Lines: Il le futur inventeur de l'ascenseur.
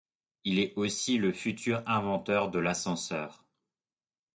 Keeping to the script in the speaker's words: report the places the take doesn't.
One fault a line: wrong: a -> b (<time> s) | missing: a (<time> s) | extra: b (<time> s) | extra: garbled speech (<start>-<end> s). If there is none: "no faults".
extra: est aussi (0.6 s)